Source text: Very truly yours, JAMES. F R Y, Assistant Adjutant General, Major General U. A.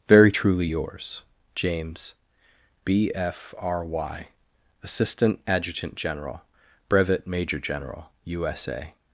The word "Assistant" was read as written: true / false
true